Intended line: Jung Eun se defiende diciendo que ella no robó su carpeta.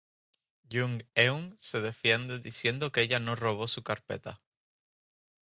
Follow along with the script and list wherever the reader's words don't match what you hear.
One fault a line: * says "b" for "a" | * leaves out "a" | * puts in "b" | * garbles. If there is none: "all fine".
all fine